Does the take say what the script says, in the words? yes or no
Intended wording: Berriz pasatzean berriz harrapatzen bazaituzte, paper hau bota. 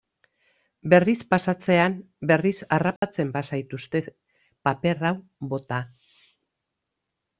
yes